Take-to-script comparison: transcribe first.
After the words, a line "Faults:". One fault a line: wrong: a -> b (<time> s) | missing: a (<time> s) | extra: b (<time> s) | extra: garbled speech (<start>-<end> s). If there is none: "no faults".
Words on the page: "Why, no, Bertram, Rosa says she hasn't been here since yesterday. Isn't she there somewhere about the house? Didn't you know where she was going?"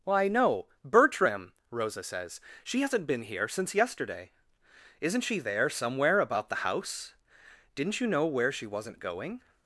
"Why, no, Bertram, Rosa says she hasn't been here since yesterday. Isn't she there somewhere about the house? Didn't you know where she wasn't going?"
Faults:
wrong: was -> wasn't (8.7 s)